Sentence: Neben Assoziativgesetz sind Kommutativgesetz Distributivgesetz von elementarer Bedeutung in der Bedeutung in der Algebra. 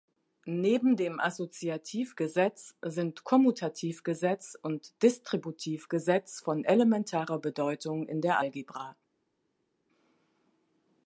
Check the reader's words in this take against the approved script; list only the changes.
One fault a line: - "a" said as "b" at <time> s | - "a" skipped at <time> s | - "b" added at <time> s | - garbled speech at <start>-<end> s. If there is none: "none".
- "dem" added at 1.0 s
- "und" added at 4.6 s
- "Bedeutung in der" skipped at 8.4 s